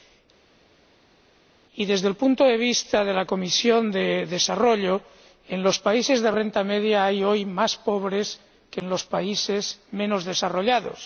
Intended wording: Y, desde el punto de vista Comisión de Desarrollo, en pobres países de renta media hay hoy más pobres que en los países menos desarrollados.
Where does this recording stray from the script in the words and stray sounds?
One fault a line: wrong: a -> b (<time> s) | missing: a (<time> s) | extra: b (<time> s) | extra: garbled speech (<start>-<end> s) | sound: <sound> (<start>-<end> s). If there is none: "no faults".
extra: de la (3.0 s)
wrong: pobres -> los (5.6 s)